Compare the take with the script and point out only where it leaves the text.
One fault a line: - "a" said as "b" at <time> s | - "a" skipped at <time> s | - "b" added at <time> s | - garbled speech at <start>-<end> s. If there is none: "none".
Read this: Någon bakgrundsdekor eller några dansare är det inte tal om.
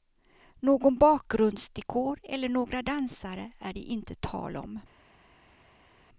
none